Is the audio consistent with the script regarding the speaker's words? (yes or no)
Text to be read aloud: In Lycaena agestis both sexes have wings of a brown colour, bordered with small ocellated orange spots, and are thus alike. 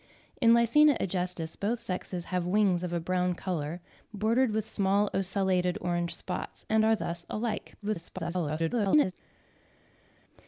no